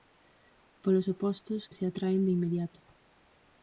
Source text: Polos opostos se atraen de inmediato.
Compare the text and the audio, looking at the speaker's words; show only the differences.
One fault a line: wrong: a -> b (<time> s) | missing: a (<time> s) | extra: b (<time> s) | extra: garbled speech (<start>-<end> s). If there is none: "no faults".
no faults